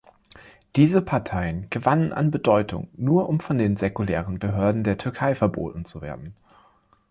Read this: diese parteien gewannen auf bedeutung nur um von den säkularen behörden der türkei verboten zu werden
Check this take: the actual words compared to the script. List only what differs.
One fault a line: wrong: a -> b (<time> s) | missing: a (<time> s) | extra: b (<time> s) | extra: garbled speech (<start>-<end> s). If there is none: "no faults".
wrong: auf -> an (2.1 s)